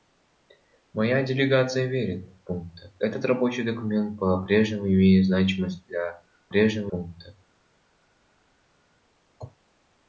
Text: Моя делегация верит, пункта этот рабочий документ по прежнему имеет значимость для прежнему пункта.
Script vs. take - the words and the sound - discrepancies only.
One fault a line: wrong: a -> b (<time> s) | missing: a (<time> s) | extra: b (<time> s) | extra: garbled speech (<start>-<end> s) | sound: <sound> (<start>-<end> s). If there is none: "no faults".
no faults